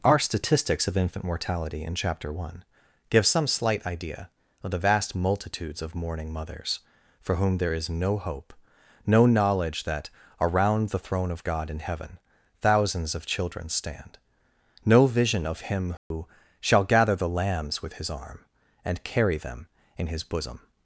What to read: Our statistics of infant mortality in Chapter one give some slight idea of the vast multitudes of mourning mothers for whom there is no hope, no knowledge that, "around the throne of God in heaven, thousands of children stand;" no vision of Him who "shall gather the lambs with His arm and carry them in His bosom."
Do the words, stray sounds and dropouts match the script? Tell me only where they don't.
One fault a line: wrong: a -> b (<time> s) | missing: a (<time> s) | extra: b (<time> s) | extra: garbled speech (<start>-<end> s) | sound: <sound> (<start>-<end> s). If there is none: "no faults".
sound: dropout (16.0-16.1 s)